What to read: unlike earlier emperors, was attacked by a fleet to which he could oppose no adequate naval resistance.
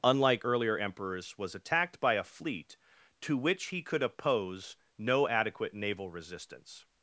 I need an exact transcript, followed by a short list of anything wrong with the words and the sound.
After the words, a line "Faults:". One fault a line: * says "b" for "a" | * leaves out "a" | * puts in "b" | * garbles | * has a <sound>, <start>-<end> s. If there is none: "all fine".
unlike earlier emperors, was attacked by a fleet to which he could oppose no adequate naval resistance.
Faults:
all fine